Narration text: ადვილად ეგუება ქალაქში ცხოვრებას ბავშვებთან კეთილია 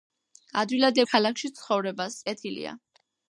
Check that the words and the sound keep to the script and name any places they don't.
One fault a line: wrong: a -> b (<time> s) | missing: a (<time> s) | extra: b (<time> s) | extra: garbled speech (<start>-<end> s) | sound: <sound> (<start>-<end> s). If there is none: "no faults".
missing: ეგუება (1.0 s)
missing: ბავშვებთან (2.2 s)